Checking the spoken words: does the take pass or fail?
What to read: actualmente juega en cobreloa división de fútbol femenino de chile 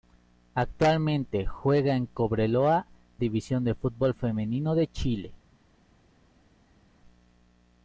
pass